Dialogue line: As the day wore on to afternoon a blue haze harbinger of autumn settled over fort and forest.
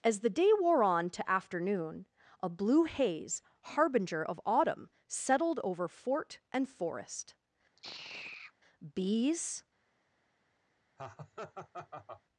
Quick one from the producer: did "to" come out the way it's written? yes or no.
yes